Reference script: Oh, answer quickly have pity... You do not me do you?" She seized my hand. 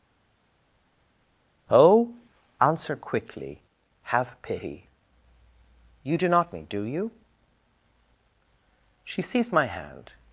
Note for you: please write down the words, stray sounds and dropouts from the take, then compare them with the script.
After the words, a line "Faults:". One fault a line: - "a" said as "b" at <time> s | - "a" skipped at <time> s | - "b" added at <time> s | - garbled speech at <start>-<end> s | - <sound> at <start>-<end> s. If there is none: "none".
Oh, answer quickly have pity... You do not me do you?" She seized my hand.
Faults:
none